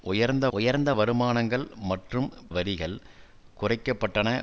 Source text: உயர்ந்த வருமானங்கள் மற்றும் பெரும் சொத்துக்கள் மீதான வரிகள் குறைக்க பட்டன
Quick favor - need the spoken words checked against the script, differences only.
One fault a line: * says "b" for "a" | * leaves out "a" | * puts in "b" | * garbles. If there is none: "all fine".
* puts in "உயர்ந்த"
* leaves out "பெரும் சொத்துக்கள் மீதான"